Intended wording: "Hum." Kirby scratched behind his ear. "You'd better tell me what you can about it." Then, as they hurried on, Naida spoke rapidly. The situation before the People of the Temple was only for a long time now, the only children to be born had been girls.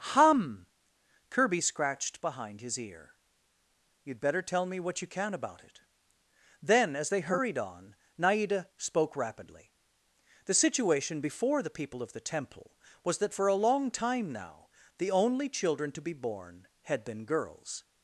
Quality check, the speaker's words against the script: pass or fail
fail